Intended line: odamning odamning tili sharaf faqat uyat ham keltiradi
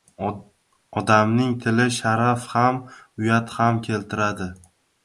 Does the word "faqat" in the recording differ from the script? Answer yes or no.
yes